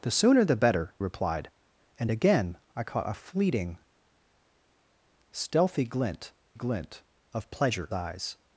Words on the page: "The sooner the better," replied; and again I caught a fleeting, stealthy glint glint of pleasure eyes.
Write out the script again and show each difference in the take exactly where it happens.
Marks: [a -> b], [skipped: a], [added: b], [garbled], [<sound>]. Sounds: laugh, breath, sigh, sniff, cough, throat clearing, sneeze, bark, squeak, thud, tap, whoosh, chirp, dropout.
"The sooner the better," replied; and again I caught a fleeting, stealthy glint glint of pleasure eyes.